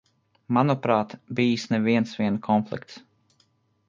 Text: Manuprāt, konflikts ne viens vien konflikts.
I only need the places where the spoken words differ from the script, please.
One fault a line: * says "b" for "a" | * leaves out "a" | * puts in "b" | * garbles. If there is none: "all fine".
* says "bijis" for "konflikts"